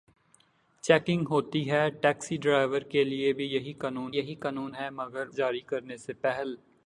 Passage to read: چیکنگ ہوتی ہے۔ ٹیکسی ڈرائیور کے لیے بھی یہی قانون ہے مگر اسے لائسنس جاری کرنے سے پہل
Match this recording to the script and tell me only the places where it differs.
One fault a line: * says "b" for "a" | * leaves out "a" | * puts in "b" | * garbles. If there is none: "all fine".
* puts in "یہی قانون"
* leaves out "اسے لائسنس"